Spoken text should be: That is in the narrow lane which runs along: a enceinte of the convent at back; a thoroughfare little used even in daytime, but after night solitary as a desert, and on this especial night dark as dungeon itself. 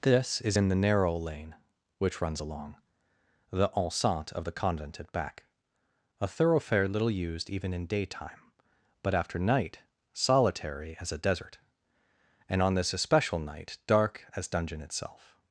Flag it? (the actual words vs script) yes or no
yes